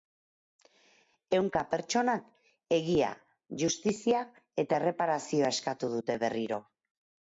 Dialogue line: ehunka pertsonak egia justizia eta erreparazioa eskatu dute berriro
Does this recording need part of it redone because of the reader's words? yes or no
no